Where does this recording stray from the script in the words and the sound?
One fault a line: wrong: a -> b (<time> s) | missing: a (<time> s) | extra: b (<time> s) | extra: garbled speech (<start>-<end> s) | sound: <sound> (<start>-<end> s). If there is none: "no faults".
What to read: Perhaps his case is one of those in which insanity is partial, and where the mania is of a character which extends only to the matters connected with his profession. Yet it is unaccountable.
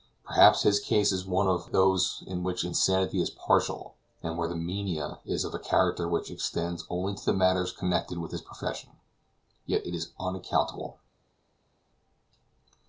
no faults